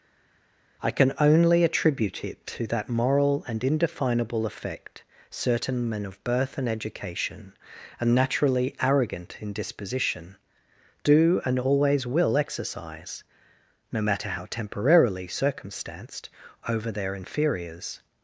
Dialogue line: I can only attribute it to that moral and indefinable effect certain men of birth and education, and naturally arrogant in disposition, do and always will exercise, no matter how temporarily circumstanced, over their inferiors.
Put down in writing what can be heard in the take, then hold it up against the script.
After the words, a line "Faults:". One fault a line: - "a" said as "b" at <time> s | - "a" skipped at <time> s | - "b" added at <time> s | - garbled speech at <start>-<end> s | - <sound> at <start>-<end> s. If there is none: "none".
I can only attribute it to that moral and indefinable effect certain men of birth and education, and naturally arrogant in disposition, do and always will exercise, no matter how temporarily circumstanced, over their inferiors.
Faults:
none